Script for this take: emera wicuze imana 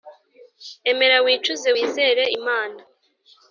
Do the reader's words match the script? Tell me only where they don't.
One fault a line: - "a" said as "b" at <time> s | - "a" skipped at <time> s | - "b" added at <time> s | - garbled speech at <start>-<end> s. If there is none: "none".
- "wizere" added at 1.7 s